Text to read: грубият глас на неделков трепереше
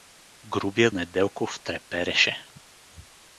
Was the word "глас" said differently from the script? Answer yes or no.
yes